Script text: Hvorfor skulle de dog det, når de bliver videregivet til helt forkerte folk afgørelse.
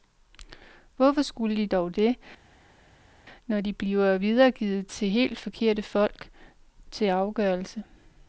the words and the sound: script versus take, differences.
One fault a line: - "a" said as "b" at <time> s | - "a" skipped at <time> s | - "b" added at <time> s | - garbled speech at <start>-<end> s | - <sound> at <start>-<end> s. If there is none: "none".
- "til" added at 6.9 s